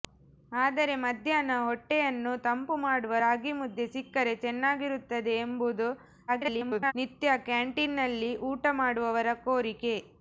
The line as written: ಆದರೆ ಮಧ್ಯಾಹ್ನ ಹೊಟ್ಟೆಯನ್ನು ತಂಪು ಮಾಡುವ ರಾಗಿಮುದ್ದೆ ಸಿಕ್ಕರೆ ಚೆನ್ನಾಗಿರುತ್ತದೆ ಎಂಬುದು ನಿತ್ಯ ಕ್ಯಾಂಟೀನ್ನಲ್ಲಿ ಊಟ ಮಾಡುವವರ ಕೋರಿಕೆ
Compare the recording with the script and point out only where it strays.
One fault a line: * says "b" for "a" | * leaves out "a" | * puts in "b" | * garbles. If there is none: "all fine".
* garbles